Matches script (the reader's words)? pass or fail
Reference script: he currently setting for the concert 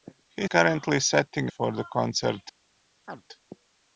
pass